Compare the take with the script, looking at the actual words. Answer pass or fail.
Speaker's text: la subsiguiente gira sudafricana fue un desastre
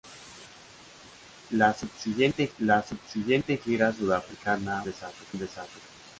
fail